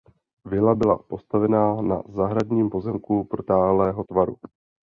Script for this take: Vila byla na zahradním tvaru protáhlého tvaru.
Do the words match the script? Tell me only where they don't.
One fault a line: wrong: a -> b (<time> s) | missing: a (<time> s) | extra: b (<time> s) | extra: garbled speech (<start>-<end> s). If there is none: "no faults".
extra: postavena (1.1 s)
wrong: tvaru -> pozemku (2.7 s)